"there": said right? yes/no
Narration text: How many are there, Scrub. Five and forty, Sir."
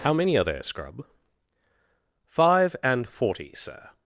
yes